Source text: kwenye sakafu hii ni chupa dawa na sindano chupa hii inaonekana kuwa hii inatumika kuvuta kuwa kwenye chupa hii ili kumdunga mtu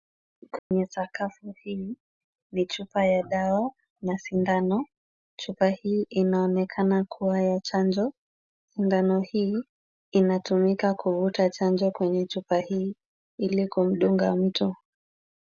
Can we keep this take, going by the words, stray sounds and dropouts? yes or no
no